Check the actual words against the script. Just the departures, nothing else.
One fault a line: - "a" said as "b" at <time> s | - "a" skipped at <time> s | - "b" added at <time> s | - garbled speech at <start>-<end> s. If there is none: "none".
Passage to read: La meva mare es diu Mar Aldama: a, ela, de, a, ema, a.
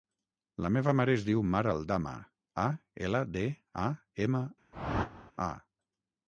none